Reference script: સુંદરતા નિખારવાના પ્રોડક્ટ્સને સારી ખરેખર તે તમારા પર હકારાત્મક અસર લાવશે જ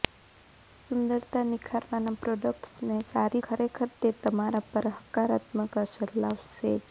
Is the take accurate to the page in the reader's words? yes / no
yes